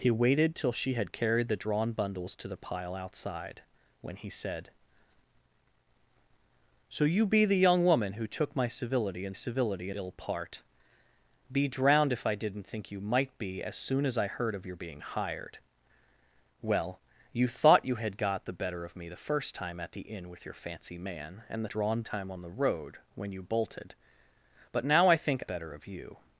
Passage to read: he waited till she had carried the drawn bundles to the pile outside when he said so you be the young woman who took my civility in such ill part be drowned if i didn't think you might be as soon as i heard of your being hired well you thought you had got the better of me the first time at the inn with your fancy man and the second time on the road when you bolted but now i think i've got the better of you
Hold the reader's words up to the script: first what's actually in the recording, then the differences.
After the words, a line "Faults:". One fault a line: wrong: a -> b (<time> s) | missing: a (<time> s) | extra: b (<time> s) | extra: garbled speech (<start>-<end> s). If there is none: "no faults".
he waited till she had carried the drawn bundles to the pile outside when he said so you be the young woman who took my civility in civility ill part be drowned if i didn't think you might be as soon as i heard of your being hired well you thought you had got the better of me the first time at the inn with your fancy man and the drawn time on the road when you bolted but now i think better of you
Faults:
wrong: such -> civility (9.3 s)
wrong: second -> drawn (21.6 s)
missing: i've got the (25.4 s)